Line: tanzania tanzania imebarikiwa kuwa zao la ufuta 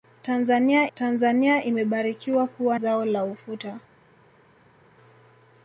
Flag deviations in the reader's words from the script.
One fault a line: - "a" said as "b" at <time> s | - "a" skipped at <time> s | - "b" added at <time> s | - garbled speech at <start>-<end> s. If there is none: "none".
none